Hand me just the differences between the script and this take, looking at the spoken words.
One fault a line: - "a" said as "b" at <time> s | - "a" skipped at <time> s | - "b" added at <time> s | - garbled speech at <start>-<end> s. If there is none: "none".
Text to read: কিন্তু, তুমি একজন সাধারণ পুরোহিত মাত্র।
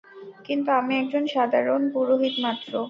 - "তুমি" said as "আমি" at 0.8 s